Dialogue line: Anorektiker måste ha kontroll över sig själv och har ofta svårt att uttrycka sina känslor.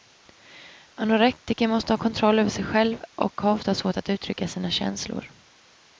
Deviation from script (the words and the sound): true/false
false